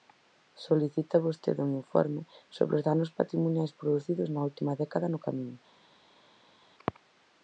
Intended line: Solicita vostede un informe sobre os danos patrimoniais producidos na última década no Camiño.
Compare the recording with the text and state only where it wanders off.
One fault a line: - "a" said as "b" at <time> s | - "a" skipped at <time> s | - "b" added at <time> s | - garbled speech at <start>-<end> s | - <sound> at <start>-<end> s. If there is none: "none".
none